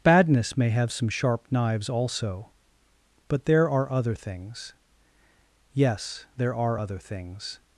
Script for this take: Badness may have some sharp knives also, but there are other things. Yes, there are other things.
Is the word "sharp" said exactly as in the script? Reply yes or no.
yes